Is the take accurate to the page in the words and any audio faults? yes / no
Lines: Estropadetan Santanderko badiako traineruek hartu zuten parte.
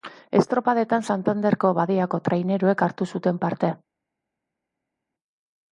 yes